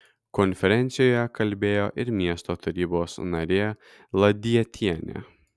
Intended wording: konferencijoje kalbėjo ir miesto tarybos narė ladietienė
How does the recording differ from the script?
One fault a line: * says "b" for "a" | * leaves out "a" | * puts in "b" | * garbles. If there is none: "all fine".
all fine